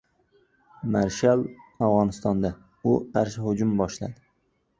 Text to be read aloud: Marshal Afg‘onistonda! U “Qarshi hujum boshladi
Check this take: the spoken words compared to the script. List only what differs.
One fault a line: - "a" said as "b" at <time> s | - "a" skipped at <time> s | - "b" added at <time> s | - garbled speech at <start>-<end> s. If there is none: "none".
none